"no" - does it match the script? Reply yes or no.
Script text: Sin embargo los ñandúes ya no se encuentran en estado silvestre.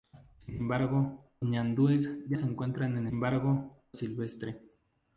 no